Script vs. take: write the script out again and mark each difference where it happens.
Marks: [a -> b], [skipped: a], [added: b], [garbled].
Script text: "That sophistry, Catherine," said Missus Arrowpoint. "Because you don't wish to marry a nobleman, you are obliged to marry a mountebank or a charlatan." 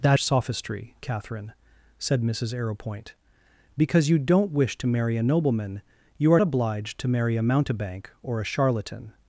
"That sophistry, Catherine," said Missus Arrowpoint. "Because you don't wish to marry a nobleman, you are obliged to marry a mountebank or a charlatan."